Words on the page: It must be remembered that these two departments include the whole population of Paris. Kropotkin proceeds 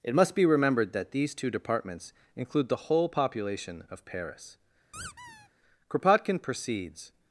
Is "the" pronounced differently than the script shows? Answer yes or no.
no